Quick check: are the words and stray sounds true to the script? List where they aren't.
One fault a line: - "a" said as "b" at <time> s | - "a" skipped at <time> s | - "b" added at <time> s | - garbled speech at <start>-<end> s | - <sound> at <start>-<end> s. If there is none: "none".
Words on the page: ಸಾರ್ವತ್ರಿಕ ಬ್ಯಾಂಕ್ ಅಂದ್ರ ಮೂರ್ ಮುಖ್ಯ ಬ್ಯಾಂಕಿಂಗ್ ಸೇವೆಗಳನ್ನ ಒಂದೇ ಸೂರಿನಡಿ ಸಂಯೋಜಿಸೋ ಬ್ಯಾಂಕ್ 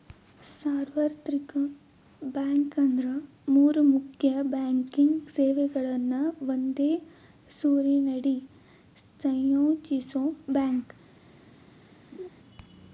- laugh at 12.1-12.3 s